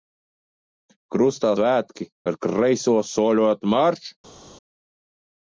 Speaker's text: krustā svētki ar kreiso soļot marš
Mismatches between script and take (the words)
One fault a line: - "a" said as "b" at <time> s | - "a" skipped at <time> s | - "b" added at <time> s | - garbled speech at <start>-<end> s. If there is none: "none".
none